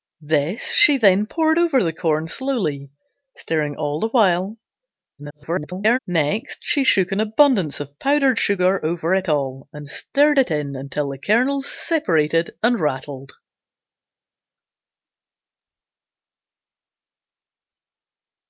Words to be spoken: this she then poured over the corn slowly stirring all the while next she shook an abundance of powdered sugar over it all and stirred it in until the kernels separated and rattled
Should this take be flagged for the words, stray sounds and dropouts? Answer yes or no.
yes